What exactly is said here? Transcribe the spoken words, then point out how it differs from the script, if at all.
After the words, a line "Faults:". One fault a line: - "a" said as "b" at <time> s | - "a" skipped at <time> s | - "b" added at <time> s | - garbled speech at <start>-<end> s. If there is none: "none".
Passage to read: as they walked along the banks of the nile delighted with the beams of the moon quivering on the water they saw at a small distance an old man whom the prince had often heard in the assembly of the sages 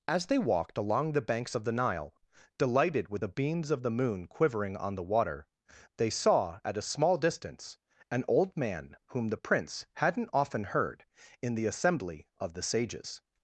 as they walked along the banks of the nile delighted with the beams of the moon quivering on the water they saw at a small distance an old man whom the prince hadn't often heard in the assembly of the sages
Faults:
- "had" said as "hadn't" at 9.9 s